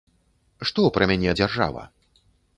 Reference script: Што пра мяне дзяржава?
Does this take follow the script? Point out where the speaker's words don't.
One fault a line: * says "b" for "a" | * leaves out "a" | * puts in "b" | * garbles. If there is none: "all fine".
all fine